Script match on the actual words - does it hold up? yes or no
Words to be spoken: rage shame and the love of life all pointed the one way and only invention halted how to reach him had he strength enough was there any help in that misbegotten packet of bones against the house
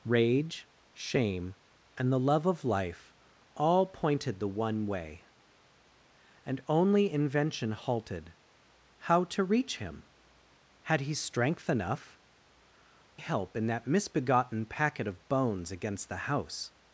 no